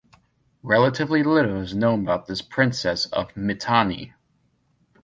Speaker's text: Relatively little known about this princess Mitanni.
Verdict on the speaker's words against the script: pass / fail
fail